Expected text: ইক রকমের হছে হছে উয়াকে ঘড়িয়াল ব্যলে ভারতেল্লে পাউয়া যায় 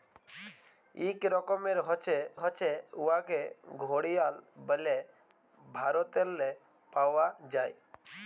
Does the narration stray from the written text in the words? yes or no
no